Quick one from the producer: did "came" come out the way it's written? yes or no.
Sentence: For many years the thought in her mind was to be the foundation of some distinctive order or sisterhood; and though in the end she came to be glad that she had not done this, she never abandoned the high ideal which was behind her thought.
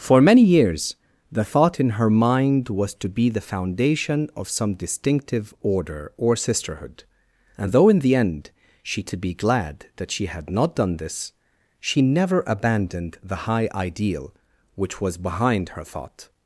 no